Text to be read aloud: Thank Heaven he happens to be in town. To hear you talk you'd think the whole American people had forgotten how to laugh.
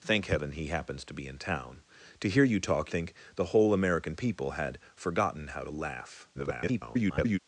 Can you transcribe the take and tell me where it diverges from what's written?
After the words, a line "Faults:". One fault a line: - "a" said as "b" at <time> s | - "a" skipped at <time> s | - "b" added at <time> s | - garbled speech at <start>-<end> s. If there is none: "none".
Thank Heaven he happens to be in town. To hear you talk think the whole American people had forgotten how to laugh. [garbled]
Faults:
- "you'd" skipped at 2.9 s
- garbled speech at 6.3-7.4 s